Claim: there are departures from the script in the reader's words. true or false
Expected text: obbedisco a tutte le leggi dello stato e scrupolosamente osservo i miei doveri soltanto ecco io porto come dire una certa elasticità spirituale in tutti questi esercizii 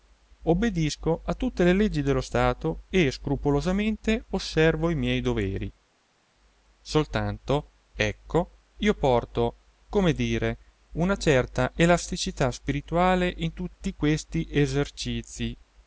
false